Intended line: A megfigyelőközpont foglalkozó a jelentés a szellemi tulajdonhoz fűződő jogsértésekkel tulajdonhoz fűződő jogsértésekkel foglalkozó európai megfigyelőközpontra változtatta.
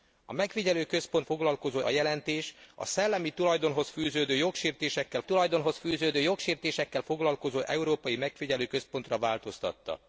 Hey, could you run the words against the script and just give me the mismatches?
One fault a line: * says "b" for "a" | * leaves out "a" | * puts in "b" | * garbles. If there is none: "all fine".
all fine